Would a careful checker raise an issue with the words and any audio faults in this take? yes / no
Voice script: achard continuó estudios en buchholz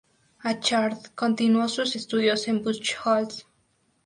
yes